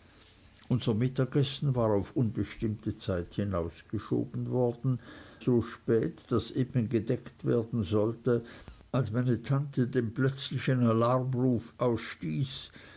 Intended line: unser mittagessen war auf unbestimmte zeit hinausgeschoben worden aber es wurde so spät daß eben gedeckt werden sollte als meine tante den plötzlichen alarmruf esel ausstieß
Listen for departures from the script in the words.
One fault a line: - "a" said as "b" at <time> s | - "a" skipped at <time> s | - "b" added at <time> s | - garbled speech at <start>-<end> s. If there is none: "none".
- "aber es wurde" skipped at 5.0 s
- "esel" skipped at 11.7 s